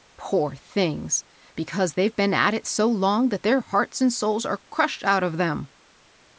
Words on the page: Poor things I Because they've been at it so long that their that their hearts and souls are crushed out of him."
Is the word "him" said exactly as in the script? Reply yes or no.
no